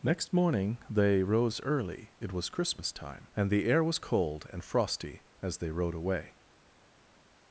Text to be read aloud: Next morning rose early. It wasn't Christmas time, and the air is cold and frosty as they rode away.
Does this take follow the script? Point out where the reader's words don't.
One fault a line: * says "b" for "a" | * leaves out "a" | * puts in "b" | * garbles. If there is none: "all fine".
* puts in "they"
* says "was" for "wasn't"
* says "was" for "is"